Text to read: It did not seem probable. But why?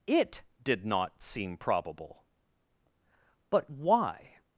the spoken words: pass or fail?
pass